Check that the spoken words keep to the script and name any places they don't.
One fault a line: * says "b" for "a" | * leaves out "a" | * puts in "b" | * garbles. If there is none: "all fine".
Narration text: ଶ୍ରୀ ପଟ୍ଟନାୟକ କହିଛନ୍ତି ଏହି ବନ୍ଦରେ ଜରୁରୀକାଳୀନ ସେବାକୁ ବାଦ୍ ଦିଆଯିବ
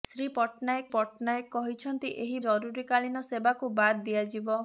* puts in "ପଟ୍ଟନାୟକ"
* leaves out "ବନ୍ଦରେ"